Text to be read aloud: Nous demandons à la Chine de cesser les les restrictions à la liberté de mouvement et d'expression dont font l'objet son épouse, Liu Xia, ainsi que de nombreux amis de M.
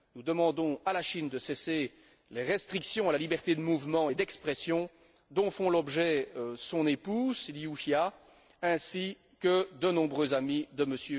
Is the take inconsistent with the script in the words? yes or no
yes